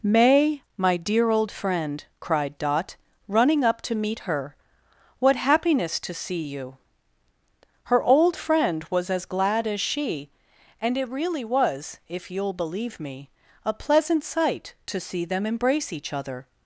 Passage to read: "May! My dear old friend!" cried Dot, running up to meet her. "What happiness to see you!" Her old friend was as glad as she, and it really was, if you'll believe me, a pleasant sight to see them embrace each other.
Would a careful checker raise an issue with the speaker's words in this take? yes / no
no